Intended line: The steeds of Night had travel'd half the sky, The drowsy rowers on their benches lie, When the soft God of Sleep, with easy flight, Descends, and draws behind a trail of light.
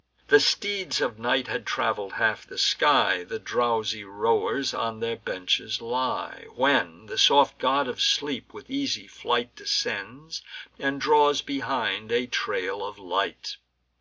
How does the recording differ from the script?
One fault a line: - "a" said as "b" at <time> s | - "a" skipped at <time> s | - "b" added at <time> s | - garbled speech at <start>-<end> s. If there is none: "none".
none